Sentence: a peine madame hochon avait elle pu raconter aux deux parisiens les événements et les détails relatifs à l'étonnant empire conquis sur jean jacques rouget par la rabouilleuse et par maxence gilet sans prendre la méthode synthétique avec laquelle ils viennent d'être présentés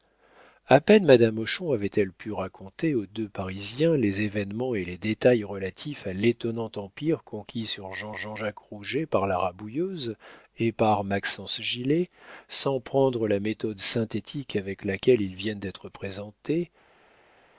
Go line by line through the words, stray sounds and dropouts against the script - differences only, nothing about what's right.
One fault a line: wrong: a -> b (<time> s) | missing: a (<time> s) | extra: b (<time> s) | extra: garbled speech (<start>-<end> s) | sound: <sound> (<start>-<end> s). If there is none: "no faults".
extra: jean (8.2 s)